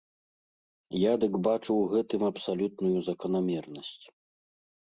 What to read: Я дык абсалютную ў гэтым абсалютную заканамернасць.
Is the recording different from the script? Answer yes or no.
yes